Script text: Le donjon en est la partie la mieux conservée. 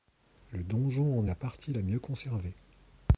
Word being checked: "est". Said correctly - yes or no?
no